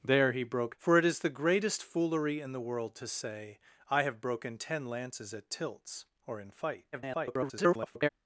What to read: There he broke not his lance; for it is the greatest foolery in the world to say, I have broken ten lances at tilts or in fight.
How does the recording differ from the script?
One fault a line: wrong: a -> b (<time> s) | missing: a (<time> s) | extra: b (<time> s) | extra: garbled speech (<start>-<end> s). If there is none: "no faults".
missing: not his lance (0.8 s)
extra: garbled speech (6.9-8.1 s)